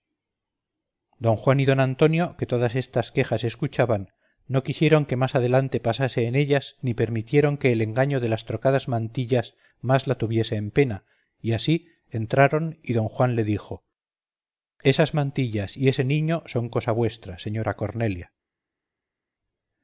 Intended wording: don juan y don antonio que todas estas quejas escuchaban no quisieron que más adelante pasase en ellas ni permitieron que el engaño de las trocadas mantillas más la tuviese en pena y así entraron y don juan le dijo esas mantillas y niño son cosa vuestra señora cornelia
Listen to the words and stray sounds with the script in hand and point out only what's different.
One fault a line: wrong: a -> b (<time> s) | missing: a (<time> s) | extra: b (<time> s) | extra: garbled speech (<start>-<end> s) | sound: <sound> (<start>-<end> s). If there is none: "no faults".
extra: ese (15.9 s)